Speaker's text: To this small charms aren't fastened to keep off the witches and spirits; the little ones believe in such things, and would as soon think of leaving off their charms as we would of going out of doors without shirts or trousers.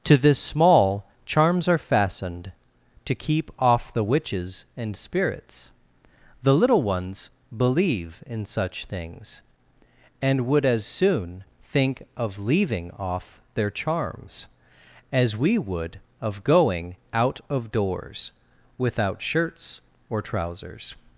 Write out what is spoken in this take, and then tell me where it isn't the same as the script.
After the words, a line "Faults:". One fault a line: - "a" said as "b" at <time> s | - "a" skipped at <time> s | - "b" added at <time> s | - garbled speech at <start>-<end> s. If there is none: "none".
To this small charms are fastened to keep off the witches and spirits; the little ones believe in such things, and would as soon think of leaving off their charms as we would of going out of doors without shirts or trousers.
Faults:
- "aren't" said as "are" at 1.7 s